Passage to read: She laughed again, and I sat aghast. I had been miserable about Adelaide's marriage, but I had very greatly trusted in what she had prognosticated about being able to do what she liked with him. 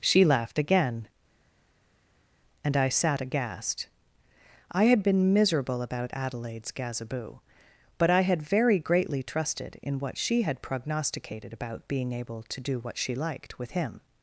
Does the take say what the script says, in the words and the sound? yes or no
no